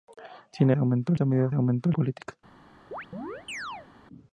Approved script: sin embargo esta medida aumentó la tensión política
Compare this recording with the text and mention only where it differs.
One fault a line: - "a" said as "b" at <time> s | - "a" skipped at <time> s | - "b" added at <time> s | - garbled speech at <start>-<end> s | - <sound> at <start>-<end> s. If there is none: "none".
- "embargo" said as "aumentó" at 0.8 s
- "la tensión" skipped at 1.9 s
- chirp at 2.9-3.9 s